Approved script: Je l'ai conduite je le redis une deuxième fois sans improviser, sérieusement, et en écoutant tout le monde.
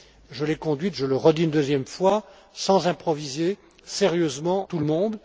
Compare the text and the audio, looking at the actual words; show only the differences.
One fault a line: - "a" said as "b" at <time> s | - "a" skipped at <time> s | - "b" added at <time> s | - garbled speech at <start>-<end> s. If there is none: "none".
- "et en écoutant" skipped at 4.7 s